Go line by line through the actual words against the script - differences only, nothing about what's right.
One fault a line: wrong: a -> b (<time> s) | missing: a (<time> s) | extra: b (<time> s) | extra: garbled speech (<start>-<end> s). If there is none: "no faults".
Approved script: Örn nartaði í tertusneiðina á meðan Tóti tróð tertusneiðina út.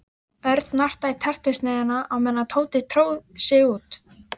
wrong: tertusneiðina -> sig (3.5 s)